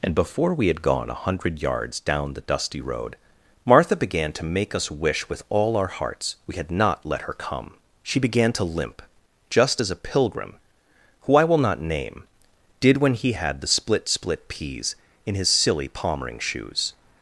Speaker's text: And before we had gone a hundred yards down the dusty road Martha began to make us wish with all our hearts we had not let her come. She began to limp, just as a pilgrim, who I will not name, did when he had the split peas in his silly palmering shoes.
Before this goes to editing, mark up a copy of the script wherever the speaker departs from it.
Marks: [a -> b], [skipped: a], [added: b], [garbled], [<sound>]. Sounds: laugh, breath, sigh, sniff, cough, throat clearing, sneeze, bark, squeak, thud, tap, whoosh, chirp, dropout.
And before we had gone a hundred yards down the dusty road Martha began to make us wish with all our hearts we had not let her come. She began to limp, just as a pilgrim, who I will not name, did when he had the split [added: split] peas in his silly palmering shoes.